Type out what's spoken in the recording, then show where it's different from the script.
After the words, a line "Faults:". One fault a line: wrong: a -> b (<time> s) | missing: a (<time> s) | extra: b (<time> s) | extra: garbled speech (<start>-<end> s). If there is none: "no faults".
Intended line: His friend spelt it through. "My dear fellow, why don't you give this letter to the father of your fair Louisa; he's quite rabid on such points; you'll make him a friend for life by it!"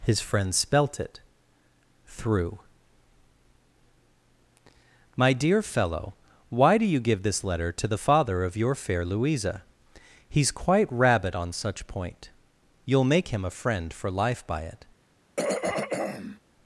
His friend spelt it through. "My dear fellow, why do you give this letter to the father of your fair Louisa; he's quite rabid on such point; you'll make him a friend for life by it!"
Faults:
wrong: don't -> do (6.8 s)
wrong: points -> point (11.9 s)